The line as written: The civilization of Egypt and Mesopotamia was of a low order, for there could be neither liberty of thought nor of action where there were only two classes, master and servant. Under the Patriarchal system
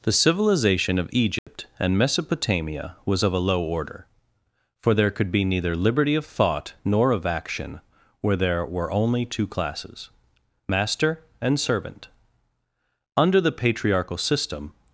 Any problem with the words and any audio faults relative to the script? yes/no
yes